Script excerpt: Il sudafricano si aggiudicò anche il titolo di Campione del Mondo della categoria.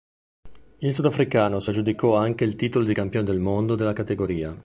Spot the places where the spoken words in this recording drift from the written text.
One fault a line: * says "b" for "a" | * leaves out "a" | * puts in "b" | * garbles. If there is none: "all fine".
all fine